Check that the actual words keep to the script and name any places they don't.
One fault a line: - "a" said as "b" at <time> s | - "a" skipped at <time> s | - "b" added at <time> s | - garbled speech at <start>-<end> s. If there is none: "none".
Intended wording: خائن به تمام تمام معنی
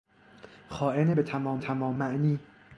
none